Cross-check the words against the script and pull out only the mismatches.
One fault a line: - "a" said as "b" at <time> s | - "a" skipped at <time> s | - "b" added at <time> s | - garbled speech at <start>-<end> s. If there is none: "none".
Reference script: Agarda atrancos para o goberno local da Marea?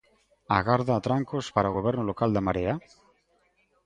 none